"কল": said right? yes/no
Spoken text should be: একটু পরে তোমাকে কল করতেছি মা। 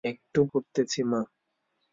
no